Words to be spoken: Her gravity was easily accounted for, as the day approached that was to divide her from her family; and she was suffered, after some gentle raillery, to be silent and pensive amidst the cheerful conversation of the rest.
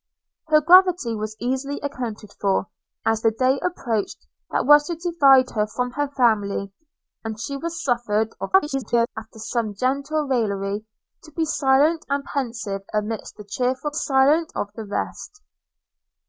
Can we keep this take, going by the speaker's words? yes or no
no